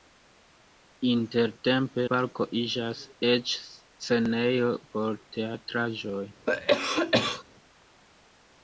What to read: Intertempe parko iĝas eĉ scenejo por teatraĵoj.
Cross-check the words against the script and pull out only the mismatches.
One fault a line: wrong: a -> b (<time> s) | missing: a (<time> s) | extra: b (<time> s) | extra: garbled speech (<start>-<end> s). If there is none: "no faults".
no faults